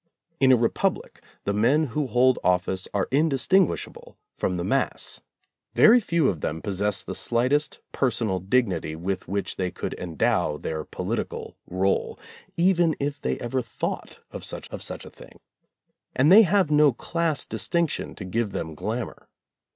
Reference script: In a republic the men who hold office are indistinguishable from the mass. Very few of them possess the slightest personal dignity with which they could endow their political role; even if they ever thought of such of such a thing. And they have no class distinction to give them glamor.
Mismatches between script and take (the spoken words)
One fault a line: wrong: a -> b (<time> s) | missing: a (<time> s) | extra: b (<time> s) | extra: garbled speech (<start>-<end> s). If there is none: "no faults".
no faults